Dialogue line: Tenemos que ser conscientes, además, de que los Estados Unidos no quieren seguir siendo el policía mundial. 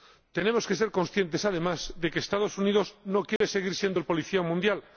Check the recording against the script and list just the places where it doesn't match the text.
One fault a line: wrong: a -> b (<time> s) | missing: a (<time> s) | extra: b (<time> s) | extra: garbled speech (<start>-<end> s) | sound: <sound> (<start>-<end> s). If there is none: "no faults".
sound: dropout (3.4-3.4 s)